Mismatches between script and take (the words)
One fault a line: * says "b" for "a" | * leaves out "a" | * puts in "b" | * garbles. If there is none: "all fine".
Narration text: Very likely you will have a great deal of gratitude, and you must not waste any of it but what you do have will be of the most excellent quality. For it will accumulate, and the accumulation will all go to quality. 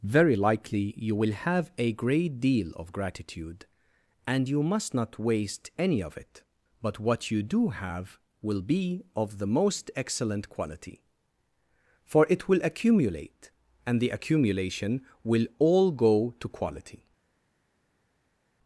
all fine